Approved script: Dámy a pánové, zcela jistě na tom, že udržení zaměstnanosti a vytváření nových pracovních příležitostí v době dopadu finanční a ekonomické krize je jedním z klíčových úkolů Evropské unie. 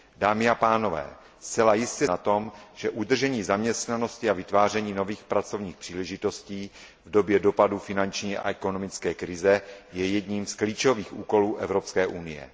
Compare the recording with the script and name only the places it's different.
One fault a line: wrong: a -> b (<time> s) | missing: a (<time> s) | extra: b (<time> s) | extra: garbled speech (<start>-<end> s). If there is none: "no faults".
no faults